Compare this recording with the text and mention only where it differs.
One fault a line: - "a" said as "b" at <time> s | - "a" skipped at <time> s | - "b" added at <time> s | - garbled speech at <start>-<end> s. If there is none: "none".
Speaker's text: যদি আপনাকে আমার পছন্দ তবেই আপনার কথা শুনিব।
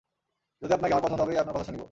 none